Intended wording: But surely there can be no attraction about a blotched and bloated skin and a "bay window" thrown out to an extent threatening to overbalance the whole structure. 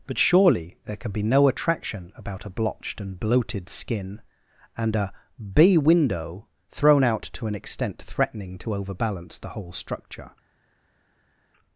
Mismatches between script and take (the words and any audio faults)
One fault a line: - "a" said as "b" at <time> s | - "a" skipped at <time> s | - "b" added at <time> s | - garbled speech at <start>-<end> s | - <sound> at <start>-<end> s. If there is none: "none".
none